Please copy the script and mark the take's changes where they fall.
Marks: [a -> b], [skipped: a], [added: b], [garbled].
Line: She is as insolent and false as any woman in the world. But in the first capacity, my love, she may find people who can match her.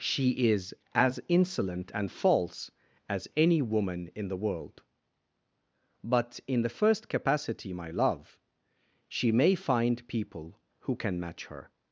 She is as insolent and false as any woman in the world. But in the first capacity, my love, she may find people who can match her.